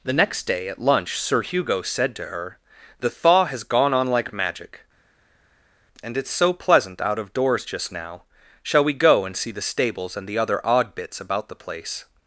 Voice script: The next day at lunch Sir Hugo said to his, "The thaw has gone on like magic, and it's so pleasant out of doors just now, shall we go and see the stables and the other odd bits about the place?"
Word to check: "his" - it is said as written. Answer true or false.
false